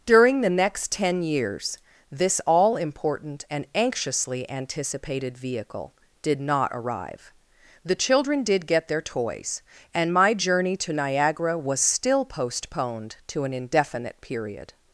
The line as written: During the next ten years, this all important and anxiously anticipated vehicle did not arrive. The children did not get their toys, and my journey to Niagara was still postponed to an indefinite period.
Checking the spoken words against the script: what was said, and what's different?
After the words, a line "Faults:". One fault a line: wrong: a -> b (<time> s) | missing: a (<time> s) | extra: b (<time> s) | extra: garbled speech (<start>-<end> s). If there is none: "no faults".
During the next ten years, this all important and anxiously anticipated vehicle did not arrive. The children did get their toys, and my journey to Niagara was still postponed to an indefinite period.
Faults:
missing: not (8.7 s)